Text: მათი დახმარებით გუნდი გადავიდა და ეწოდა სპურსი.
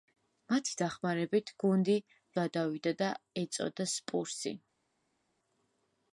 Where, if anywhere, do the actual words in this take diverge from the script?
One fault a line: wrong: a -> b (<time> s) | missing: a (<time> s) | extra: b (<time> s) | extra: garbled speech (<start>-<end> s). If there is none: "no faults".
no faults